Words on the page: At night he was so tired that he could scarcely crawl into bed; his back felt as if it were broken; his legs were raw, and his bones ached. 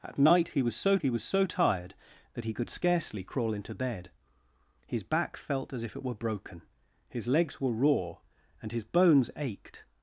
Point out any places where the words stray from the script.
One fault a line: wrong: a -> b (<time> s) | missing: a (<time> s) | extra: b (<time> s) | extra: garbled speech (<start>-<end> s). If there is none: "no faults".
extra: he was so (1.0 s)